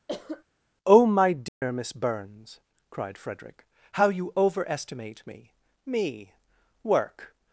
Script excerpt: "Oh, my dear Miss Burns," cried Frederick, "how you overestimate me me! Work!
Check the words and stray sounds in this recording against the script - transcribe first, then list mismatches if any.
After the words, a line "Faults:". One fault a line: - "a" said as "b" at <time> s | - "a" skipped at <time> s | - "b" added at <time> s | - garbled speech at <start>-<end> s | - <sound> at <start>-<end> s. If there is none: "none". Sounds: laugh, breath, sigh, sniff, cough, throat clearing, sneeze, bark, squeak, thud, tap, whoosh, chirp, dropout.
"Oh, my dear Miss Burns," cried Frederick, "how you overestimate me me! Work!
Faults:
- cough at 0.1-0.4 s
- dropout at 1.5-1.6 s